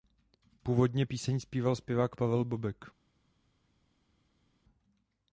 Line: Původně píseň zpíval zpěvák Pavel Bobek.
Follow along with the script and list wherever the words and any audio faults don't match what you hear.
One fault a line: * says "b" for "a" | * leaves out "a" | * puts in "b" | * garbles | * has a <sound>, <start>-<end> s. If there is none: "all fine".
all fine